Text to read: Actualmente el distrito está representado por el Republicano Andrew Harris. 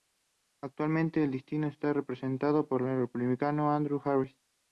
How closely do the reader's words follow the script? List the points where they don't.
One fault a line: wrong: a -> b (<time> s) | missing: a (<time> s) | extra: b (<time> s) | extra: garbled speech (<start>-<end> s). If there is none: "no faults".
no faults